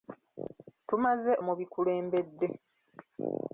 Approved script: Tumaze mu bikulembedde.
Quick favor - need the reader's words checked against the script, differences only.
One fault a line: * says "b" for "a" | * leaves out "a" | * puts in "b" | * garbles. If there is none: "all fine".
all fine